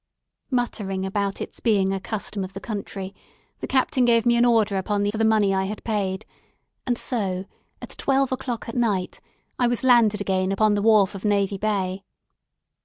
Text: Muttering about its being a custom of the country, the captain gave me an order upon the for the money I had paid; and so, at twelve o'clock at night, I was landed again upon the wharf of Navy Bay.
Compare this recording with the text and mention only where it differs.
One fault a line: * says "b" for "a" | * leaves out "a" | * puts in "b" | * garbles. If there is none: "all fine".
all fine